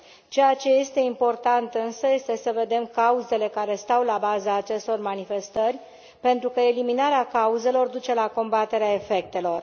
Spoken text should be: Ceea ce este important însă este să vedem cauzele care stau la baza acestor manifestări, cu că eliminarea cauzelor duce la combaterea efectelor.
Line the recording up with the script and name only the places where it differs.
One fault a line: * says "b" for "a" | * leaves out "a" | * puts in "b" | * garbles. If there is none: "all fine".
* says "pentru" for "cu"